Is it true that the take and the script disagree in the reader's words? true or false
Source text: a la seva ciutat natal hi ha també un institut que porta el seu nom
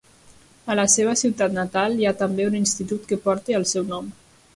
false